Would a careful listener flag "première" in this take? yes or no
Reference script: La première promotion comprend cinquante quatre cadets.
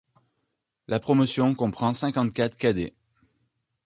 yes